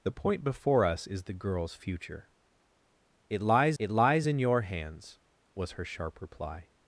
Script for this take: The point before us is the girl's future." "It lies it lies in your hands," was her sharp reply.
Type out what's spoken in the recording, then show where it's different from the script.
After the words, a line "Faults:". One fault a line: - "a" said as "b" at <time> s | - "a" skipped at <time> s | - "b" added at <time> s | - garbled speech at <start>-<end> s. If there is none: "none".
The point before us is the girl's future." "It lies it lies in your hands," was her sharp reply.
Faults:
none